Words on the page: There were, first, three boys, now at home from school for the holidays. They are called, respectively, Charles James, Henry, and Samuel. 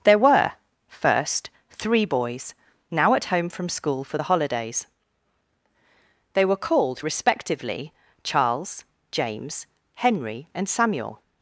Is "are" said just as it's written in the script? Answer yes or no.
no